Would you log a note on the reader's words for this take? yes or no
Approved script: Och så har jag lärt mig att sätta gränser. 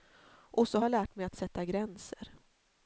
yes